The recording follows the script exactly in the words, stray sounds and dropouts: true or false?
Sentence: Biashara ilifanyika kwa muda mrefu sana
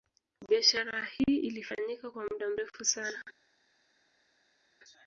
false